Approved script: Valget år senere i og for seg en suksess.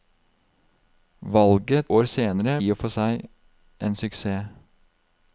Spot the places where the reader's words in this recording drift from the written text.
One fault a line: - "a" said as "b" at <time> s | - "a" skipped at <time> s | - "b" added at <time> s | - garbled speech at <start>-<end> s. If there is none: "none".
none